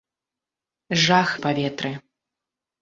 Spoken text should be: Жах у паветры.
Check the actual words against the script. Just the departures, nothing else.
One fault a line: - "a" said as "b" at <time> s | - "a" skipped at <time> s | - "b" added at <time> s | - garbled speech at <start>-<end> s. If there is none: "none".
none